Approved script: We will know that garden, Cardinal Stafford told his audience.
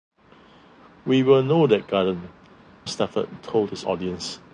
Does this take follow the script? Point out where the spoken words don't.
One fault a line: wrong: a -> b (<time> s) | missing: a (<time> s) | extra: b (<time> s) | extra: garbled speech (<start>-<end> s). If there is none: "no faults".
missing: Cardinal (2.3 s)